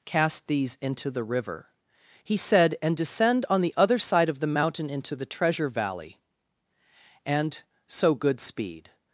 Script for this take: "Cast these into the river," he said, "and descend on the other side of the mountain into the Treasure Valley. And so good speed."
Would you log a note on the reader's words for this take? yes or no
no